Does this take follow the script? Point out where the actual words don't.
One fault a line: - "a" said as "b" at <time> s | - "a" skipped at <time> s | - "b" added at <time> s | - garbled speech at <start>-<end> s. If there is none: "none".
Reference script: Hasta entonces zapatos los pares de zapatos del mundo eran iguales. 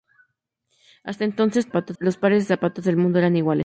none